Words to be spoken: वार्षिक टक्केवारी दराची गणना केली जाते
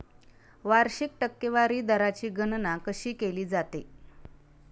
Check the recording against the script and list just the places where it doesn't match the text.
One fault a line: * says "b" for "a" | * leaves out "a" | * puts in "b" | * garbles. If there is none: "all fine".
* puts in "कशी"